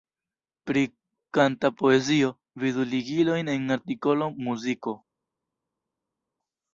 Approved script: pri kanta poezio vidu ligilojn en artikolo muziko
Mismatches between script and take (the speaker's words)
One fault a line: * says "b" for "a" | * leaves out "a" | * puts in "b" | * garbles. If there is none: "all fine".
all fine